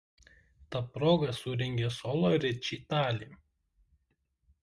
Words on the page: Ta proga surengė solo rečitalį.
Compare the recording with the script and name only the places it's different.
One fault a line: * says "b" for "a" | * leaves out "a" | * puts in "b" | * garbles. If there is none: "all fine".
all fine